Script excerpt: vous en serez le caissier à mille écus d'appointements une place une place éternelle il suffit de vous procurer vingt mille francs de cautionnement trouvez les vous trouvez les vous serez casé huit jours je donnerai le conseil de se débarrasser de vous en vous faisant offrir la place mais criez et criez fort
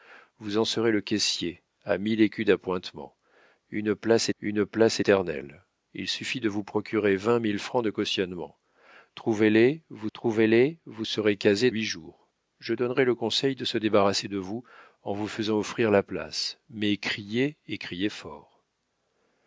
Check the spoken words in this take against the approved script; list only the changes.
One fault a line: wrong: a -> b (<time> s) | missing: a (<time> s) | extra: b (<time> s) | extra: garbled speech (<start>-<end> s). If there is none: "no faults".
no faults